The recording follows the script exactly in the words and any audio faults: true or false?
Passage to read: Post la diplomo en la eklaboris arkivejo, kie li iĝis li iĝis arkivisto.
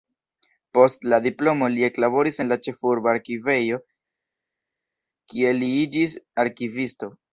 false